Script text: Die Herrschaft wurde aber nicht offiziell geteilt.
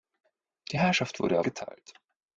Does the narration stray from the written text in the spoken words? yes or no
yes